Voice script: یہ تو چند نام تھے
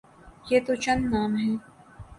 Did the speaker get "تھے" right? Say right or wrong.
wrong